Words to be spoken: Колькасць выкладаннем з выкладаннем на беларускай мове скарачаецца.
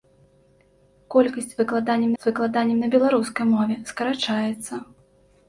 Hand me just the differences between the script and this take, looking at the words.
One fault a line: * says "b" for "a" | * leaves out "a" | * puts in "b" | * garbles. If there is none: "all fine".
all fine